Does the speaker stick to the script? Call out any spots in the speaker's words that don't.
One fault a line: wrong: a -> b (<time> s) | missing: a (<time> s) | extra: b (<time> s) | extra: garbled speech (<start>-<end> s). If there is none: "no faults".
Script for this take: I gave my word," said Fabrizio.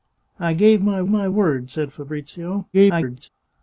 extra: my (1.1 s)
extra: garbled speech (2.7-3.3 s)